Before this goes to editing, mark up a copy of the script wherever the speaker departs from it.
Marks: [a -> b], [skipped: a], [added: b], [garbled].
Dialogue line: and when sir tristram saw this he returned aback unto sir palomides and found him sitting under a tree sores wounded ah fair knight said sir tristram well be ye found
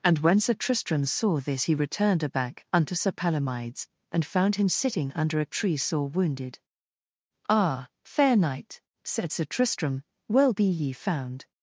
and when sir tristram saw this he returned aback unto sir palomides and found him sitting under a tree [sores -> sore] wounded ah fair knight said sir tristram well be ye found